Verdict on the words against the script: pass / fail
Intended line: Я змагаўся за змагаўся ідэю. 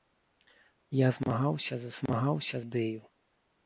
pass